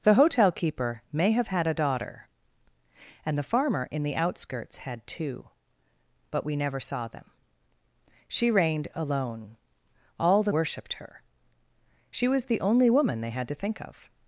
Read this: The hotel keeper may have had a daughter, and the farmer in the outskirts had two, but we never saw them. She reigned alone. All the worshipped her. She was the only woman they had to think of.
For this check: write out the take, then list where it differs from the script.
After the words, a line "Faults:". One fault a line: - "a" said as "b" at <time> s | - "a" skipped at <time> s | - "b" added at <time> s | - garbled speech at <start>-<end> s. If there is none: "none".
The hotel keeper may have had a daughter, and the farmer in the outskirts had two, but we never saw them. She reigned alone. All the worshipped her. She was the only woman they had to think of.
Faults:
none